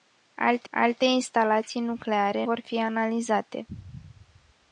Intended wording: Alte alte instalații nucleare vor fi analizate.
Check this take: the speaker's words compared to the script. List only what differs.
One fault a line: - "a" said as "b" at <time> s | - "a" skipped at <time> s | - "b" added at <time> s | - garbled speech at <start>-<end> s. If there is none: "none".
none